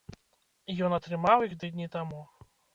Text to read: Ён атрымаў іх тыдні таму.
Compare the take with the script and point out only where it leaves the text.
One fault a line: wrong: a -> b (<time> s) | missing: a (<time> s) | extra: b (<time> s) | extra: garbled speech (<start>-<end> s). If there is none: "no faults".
no faults